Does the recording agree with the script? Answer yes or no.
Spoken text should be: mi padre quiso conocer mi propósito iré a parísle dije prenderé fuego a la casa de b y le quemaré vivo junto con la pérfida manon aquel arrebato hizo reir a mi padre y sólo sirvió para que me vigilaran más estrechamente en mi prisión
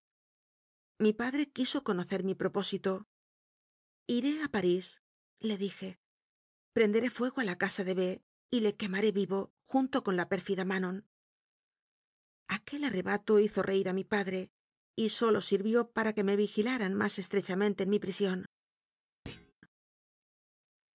yes